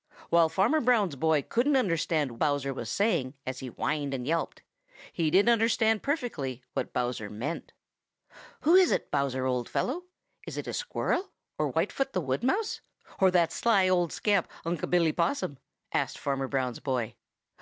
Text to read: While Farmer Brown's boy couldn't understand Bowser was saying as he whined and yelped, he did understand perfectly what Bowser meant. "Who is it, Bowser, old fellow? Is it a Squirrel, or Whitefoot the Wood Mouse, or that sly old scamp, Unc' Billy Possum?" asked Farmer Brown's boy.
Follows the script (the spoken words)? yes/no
yes